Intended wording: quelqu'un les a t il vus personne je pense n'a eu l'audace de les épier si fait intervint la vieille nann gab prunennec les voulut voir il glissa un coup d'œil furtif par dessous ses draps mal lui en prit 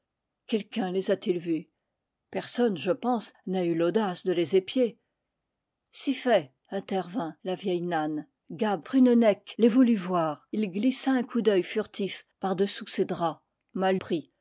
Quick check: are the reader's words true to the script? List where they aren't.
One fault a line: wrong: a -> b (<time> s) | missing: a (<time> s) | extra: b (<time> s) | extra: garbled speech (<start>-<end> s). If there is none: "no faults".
missing: lui en (13.9 s)